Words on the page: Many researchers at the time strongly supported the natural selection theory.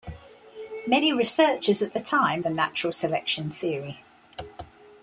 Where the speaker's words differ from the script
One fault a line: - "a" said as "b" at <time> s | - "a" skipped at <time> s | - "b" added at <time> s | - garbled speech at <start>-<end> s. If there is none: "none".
- "strongly supported" skipped at 2.4 s